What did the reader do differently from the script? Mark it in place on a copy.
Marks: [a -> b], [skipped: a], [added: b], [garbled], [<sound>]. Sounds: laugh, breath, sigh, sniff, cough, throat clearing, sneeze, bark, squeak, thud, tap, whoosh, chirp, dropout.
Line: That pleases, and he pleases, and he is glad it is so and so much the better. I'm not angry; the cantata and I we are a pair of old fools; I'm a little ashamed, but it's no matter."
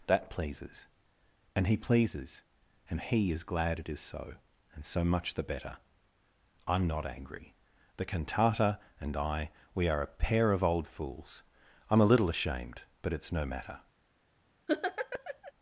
That pleases, and he pleases, and he is glad it is so and so much the better. I'm not angry; the cantata and I we are a pair of old fools; I'm a little ashamed, but it's no matter." [laugh]